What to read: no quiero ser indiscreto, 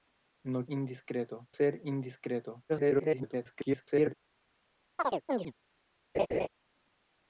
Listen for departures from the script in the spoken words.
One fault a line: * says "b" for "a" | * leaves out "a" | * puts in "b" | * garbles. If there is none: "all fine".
* says "indiscreto" for "quiero"
* garbles